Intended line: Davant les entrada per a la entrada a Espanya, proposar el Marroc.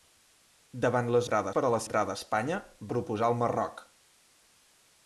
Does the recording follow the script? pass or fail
pass